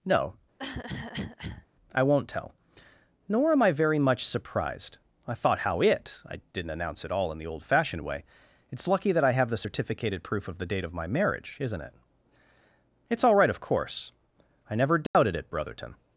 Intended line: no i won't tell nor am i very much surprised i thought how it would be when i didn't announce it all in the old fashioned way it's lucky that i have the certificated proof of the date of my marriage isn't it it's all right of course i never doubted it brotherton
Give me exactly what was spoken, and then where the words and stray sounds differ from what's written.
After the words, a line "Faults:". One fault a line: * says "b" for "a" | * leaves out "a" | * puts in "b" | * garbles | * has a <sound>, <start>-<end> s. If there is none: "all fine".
no i won't tell nor am i very much surprised i thought how it i didn't announce it all in the old fashioned way it's lucky that i have the certificated proof of the date of my marriage isn't it it's all right of course i never doubted it brotherton
Faults:
* has a cough, 0.6-1.7 s
* leaves out "would be when"
* has a dropout, 15.1-15.1 s